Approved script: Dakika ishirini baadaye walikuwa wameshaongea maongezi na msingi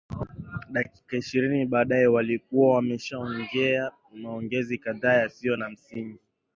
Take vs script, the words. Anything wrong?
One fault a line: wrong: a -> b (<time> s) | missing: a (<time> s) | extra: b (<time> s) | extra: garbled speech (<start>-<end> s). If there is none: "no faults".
extra: kadhaa yasiyo (4.8 s)